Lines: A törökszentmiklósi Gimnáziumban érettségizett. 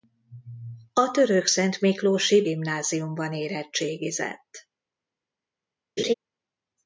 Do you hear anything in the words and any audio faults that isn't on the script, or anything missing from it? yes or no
yes